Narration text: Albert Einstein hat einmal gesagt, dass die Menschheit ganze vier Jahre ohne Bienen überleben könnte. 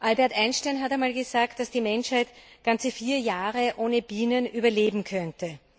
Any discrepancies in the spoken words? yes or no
no